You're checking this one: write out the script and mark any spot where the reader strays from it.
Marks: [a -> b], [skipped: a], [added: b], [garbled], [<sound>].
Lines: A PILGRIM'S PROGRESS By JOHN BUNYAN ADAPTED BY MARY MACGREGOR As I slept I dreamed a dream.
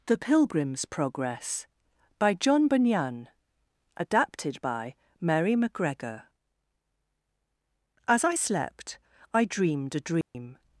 [A -> THE] PILGRIM'S PROGRESS By JOHN BUNYAN ADAPTED BY MARY MACGREGOR As I slept I dreamed a dream. [dropout]